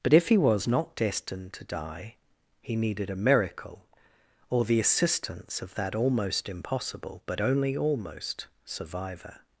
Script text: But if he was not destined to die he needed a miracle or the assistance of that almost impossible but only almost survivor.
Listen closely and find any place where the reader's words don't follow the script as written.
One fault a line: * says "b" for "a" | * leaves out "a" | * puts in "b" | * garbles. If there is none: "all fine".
all fine